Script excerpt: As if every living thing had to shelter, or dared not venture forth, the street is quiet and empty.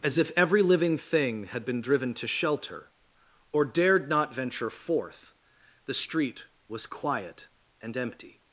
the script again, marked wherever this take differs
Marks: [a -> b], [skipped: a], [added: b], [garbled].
As if every living thing had [added: been driven] to shelter, or dared not venture forth, the street [is -> was] quiet and empty.